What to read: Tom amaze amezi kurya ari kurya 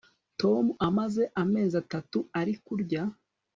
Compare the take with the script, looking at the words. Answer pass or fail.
fail